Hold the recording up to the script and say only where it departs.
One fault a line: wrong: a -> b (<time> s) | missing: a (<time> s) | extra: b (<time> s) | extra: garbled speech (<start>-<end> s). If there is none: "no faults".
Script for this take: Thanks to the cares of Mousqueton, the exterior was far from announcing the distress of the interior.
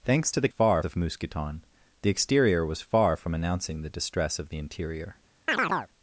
wrong: cares -> far (0.5 s)